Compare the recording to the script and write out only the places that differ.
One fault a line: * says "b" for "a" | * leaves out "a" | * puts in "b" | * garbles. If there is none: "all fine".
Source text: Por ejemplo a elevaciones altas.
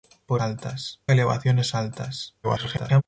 * says "altas" for "ejemplo"
* garbles